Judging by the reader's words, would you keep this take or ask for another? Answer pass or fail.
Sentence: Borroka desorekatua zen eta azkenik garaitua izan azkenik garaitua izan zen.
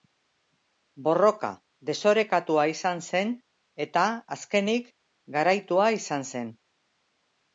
fail